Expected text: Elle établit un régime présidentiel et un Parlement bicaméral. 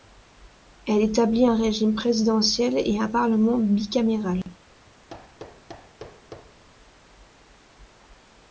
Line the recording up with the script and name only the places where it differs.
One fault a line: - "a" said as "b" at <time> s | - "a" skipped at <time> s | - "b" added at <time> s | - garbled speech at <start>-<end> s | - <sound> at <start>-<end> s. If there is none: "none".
- dropout at 4.4-4.5 s
- thud at 5.1-6.6 s